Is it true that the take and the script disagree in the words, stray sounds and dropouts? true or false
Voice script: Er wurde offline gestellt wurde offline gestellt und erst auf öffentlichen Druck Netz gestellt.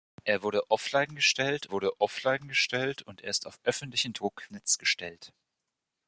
false